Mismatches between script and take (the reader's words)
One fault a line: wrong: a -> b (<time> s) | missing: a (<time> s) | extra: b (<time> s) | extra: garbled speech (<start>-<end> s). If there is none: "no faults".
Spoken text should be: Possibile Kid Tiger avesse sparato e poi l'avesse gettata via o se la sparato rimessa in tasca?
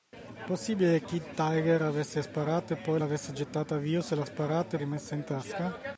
no faults